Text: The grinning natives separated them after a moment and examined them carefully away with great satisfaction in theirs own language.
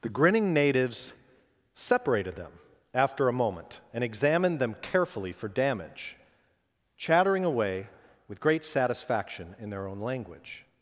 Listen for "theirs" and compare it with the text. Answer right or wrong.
wrong